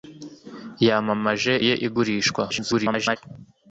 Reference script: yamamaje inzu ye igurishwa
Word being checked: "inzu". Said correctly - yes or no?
no